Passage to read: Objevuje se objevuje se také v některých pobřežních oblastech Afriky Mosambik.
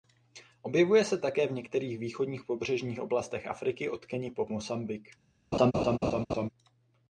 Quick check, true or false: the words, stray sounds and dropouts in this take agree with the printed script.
false